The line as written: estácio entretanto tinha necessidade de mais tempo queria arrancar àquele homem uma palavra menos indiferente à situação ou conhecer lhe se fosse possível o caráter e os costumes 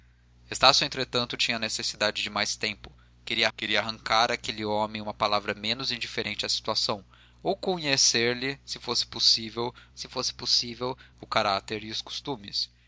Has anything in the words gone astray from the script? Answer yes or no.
yes